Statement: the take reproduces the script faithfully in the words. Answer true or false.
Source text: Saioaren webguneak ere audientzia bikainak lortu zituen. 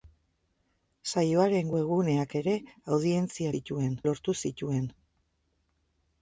false